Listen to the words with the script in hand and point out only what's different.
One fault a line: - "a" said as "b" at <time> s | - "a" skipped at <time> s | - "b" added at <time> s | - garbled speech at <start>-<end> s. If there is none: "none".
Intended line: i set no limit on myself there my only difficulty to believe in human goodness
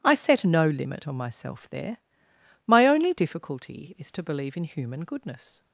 - "is" added at 4.0 s